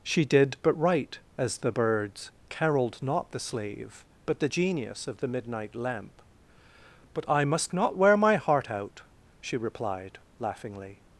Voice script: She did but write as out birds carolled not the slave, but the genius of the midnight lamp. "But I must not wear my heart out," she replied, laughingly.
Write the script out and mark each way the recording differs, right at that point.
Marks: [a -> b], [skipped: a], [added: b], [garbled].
She did but write as [out -> the] birds carolled not the slave, but the genius of the midnight lamp. "But I must not wear my heart out," she replied, laughingly.